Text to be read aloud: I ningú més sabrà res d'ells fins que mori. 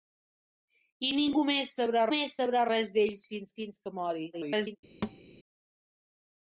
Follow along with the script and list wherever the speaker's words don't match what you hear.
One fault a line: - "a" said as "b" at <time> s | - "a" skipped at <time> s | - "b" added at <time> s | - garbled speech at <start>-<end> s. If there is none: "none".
- "més sabrà" added at 2.1 s
- "fins" added at 3.6 s
- garbled speech at 4.3-4.8 s